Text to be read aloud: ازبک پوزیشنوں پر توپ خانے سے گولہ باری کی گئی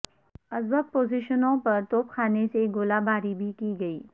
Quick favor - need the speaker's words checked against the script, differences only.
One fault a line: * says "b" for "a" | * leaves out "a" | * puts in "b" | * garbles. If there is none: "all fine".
* puts in "بھی"